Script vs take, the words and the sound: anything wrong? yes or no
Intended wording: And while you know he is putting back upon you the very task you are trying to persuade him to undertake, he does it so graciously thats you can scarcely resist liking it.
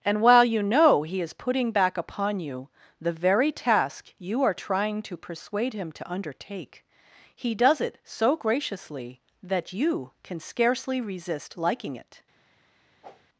yes